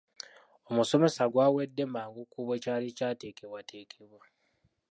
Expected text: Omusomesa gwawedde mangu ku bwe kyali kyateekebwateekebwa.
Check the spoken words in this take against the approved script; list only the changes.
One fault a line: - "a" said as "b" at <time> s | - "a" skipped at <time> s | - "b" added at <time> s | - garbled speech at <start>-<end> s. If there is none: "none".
none